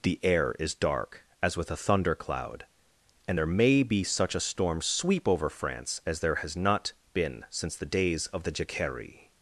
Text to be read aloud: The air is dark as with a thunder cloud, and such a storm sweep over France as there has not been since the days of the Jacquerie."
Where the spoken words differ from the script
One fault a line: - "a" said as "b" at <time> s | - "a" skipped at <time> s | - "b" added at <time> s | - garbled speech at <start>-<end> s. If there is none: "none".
- "there may be" added at 3.4 s